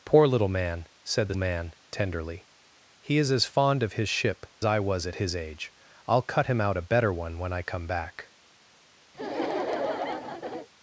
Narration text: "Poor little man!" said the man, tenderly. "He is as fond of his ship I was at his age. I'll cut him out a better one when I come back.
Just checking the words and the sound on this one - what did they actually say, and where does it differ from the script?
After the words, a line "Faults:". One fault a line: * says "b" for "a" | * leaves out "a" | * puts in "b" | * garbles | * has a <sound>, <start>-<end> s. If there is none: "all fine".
"Poor little man!" said the man, tenderly. "He is as fond of his ship I was at his age. I'll cut him out a better one when I come back.
Faults:
* has a laugh, 9.1-10.7 s